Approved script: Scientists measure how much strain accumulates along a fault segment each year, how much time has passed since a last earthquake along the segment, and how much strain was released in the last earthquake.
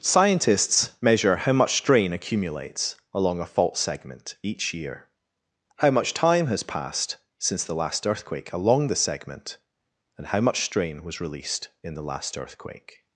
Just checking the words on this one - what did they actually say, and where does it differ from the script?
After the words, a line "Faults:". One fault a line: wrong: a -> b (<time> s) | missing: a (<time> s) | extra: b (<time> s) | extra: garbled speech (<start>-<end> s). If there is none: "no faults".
Scientists measure how much strain accumulates along a fault segment each year, how much time has passed since the last earthquake along the segment, and how much strain was released in the last earthquake.
Faults:
wrong: a -> the (7.6 s)